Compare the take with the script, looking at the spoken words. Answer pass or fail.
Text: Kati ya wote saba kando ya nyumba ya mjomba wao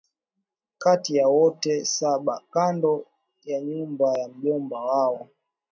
pass